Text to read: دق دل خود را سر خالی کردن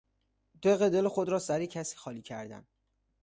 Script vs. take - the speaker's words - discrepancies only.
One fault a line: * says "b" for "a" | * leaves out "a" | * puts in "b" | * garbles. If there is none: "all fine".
* puts in "کسی"